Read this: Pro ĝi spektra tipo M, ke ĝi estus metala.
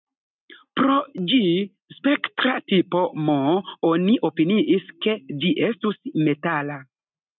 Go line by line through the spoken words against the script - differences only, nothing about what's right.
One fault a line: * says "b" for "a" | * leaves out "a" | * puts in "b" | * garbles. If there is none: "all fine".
* puts in "oni opiniis"